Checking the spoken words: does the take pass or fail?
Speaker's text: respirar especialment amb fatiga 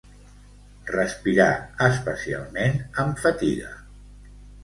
pass